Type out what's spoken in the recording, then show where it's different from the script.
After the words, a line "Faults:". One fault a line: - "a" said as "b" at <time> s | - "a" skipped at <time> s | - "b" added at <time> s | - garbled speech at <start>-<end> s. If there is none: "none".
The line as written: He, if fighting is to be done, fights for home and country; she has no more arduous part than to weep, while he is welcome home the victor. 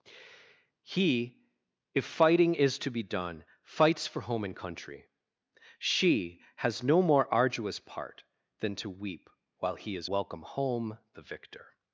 He, if fighting is to be done, fights for home and country; she has no more arduous part than to weep, while he is welcome home the victor.
Faults:
none